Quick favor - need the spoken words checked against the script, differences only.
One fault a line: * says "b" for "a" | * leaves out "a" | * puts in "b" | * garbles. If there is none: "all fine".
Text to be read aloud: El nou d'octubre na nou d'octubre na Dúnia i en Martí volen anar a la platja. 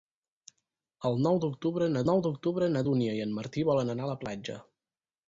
all fine